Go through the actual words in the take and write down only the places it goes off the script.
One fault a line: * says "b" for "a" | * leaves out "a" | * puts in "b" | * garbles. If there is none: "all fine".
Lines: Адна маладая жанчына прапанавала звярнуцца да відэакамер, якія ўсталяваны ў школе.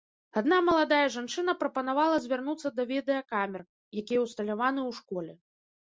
all fine